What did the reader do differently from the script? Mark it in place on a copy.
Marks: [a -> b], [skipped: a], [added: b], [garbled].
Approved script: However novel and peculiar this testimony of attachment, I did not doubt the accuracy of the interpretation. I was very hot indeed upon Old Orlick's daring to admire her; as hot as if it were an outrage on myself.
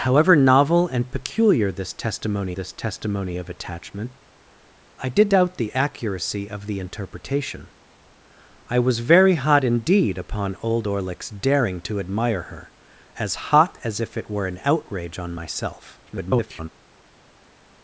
However novel and peculiar this testimony [added: this testimony] of attachment, I did [skipped: not] doubt the accuracy of the interpretation. I was very hot indeed upon Old Orlick's daring to admire her; as hot as if it were an outrage on myself. [garbled]